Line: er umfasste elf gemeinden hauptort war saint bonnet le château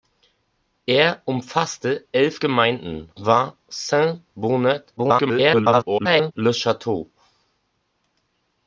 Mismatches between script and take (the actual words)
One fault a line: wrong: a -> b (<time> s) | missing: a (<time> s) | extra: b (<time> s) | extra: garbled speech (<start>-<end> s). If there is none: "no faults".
missing: hauptort (3.1 s)
extra: garbled speech (5.0-6.3 s)